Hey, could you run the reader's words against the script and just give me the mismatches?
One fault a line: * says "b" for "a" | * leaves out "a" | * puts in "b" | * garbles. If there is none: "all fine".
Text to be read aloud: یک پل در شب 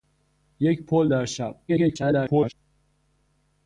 * garbles